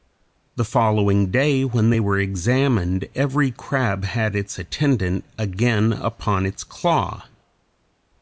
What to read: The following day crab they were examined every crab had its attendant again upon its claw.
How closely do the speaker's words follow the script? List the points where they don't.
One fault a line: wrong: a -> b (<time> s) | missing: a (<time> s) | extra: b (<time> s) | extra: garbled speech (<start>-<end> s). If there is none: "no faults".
wrong: crab -> when (1.6 s)